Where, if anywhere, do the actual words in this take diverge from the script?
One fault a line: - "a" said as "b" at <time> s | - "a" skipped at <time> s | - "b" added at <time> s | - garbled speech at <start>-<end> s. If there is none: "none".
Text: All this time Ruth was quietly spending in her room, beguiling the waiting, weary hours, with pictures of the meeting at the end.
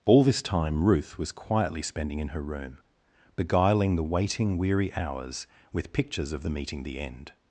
- "at" skipped at 6.8 s